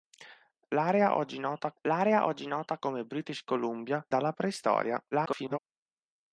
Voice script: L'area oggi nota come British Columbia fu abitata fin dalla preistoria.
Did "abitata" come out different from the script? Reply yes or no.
yes